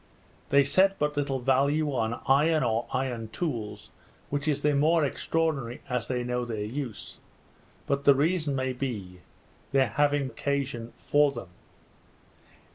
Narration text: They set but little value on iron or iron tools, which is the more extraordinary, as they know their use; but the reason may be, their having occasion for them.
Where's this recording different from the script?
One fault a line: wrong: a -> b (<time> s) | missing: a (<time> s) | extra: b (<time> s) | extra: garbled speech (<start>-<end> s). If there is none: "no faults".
no faults